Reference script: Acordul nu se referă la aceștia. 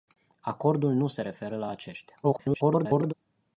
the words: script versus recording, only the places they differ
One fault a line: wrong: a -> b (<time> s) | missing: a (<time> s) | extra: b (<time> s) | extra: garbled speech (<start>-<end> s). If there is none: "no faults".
extra: garbled speech (2.2-3.1 s)